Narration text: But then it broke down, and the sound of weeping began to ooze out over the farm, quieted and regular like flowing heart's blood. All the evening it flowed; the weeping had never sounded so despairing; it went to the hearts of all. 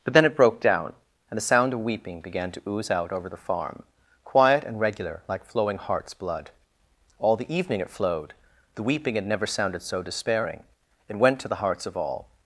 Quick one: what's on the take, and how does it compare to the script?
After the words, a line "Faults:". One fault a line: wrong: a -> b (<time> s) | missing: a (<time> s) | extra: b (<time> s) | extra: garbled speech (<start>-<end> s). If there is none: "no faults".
But then it broke down, and the sound of weeping began to ooze out over the farm, quiet and regular like flowing heart's blood. All the evening it flowed; the weeping had never sounded so despairing; it went to the hearts of all.
Faults:
wrong: quieted -> quiet (4.2 s)